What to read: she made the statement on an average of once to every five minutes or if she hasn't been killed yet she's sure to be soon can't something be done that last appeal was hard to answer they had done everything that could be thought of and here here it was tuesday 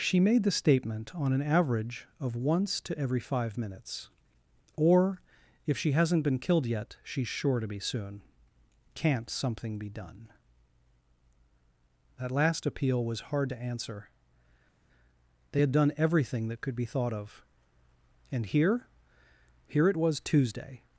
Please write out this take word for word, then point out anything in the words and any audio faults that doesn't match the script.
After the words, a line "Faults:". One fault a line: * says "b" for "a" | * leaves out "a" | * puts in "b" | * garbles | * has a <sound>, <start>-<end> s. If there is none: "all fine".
she made the statement on an average of once to every five minutes or if she hasn't been killed yet she's sure to be soon can't something be done that last appeal was hard to answer they had done everything that could be thought of and here here it was tuesday
Faults:
all fine